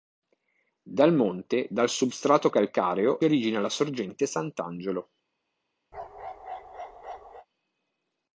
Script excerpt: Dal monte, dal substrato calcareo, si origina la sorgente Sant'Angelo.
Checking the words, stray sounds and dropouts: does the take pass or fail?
fail